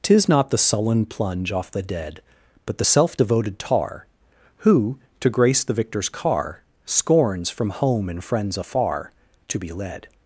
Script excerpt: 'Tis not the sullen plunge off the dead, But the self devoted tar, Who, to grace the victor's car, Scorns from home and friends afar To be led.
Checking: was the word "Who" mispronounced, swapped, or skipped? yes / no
no